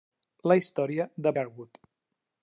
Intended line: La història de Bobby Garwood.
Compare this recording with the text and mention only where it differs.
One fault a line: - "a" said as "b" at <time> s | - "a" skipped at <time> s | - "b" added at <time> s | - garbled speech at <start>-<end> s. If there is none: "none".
- "Bobby" skipped at 1.4 s